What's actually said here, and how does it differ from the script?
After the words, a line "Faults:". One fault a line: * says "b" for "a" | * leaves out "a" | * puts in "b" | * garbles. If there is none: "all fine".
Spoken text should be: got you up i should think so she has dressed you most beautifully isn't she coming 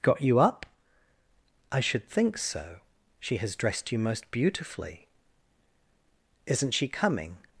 got you up i should think so she has dressed you most beautifully isn't she coming
Faults:
all fine